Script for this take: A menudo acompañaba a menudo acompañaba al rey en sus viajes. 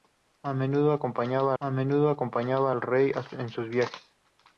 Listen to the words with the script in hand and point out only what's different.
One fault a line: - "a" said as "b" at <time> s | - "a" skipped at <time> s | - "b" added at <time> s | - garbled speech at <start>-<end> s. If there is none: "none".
none